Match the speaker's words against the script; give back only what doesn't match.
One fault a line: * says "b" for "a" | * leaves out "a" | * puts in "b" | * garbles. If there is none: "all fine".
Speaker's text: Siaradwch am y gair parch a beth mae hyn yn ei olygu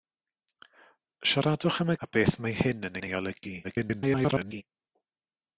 * leaves out "gair parch"
* puts in "yn"
* garbles